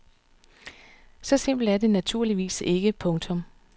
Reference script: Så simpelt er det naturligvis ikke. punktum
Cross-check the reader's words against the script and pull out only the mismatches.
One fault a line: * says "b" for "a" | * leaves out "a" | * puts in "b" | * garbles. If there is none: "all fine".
all fine